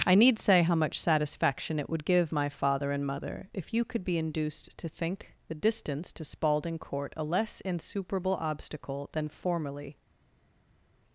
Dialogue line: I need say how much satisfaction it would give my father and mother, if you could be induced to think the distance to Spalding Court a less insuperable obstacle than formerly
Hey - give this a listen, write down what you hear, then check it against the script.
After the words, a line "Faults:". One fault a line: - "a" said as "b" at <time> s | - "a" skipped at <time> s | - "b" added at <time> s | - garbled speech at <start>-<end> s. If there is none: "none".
I need say how much satisfaction it would give my father and mother, if you could be induced to think the distance to Spalding Court a less insuperable obstacle than formerly
Faults:
none